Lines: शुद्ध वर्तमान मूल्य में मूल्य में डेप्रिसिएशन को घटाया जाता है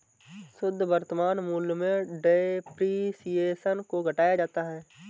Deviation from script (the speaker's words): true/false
true